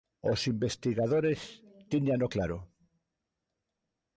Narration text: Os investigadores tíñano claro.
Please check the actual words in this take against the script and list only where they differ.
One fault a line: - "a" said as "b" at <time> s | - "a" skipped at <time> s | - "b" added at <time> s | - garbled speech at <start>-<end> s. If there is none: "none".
none